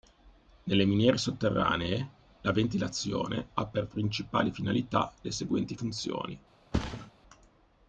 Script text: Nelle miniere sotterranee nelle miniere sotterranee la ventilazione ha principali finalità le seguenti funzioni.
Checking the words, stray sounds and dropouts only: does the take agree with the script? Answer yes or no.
no